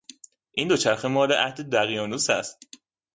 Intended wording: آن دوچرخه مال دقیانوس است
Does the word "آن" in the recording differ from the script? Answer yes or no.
yes